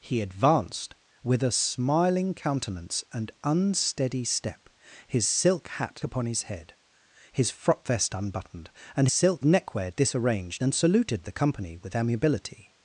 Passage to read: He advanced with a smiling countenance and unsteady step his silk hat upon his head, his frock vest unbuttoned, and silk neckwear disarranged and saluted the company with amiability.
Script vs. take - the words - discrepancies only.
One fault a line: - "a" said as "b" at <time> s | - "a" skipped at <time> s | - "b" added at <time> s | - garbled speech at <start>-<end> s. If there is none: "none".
none